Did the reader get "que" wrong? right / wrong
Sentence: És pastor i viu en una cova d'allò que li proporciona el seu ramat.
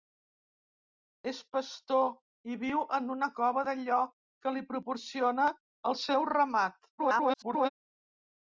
right